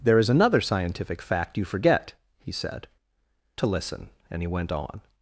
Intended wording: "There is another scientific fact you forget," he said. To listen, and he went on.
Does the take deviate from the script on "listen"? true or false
false